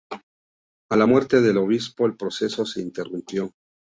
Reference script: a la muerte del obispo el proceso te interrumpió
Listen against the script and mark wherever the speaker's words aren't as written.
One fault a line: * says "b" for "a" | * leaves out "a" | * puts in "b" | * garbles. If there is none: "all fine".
* says "se" for "te"